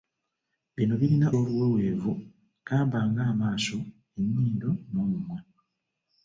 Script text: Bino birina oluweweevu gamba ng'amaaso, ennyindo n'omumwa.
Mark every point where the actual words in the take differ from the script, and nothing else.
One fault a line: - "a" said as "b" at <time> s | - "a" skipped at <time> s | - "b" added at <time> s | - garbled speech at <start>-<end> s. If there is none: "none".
none